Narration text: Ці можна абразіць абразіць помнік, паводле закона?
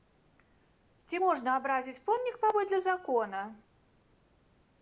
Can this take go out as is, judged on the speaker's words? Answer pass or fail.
fail